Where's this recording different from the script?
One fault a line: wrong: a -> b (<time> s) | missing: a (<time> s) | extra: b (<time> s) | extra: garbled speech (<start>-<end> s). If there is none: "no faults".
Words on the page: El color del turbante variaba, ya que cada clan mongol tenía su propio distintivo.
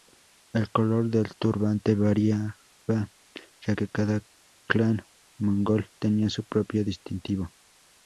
no faults